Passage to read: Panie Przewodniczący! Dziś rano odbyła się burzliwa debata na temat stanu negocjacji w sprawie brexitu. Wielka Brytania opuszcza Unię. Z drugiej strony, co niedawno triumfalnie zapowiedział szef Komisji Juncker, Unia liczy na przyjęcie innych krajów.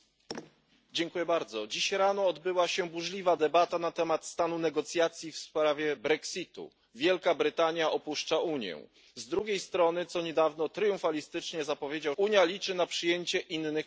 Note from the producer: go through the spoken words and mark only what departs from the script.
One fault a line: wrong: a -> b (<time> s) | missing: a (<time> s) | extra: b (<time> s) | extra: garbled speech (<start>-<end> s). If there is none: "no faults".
missing: szef Komisji Juncker (12.1 s)